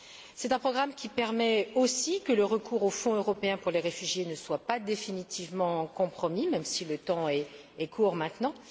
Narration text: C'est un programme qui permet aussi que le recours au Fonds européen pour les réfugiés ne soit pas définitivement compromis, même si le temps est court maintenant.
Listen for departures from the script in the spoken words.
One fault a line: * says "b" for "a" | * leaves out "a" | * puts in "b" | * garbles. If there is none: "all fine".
all fine